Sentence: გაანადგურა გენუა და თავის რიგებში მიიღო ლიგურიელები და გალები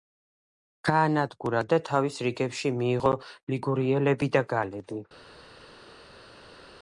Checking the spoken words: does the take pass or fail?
fail